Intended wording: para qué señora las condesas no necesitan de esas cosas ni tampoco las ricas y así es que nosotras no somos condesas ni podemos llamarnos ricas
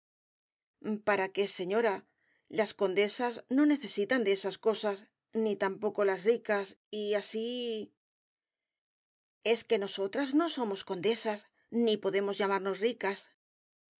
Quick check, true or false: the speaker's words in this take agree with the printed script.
true